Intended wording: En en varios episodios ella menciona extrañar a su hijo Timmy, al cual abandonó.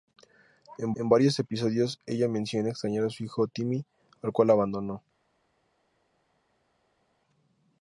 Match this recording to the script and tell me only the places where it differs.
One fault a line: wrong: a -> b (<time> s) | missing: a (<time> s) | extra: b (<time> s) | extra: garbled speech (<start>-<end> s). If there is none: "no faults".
no faults